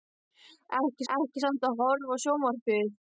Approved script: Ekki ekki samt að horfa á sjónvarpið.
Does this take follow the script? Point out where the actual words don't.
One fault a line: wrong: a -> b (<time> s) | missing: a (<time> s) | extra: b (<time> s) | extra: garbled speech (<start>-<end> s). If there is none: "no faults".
no faults